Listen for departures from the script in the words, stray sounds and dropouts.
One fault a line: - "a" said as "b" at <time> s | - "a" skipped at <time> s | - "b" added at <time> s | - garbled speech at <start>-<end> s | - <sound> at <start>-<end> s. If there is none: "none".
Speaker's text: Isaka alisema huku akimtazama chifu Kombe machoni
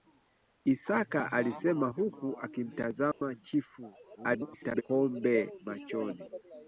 - dropout at 3.1-3.2 s
- garbled speech at 4.2-4.8 s